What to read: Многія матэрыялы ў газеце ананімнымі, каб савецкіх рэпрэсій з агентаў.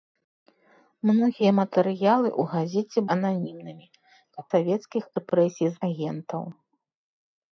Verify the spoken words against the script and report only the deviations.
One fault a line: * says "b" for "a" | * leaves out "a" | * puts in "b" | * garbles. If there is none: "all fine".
all fine